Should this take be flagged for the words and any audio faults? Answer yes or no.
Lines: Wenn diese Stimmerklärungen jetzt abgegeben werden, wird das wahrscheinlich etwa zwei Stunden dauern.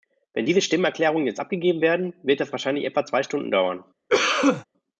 yes